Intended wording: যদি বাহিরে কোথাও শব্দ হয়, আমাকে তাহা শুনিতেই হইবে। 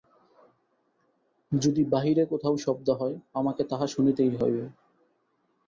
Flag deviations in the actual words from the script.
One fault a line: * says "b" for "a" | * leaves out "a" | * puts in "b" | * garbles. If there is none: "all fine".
all fine